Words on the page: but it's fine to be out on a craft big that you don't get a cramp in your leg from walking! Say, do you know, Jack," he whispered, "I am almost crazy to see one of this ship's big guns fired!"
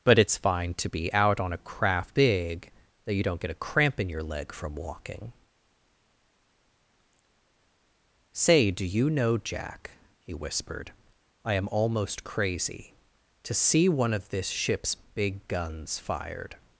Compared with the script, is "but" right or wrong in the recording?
right